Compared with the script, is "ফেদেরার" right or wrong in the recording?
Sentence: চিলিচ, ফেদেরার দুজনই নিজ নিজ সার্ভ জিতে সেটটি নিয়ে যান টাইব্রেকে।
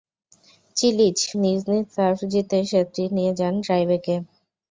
wrong